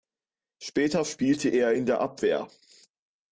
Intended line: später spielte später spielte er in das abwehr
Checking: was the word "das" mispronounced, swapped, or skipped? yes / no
yes